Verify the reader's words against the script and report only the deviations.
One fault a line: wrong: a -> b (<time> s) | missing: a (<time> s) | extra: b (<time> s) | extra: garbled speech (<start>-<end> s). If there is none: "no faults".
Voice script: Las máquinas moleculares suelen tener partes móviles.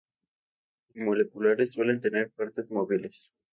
missing: máquinas (1.0 s)